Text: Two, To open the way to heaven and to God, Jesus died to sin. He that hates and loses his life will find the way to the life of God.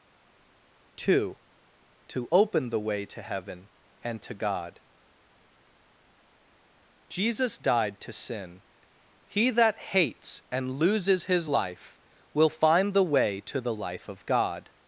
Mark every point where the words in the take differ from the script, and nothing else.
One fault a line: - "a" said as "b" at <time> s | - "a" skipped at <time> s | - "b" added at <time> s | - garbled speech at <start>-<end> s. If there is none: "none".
none